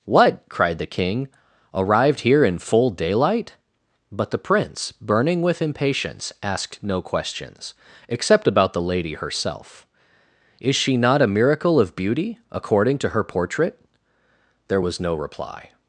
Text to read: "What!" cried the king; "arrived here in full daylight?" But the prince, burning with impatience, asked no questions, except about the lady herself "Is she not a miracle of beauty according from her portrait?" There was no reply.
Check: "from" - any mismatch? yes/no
yes